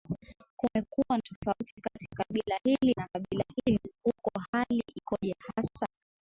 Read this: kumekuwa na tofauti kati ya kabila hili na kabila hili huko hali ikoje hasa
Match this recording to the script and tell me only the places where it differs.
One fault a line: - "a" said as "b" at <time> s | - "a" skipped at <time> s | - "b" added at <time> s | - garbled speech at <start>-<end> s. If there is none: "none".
none